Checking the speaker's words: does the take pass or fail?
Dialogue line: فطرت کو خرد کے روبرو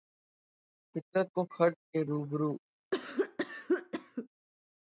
pass